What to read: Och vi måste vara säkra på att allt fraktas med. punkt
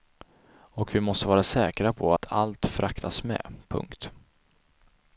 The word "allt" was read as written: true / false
true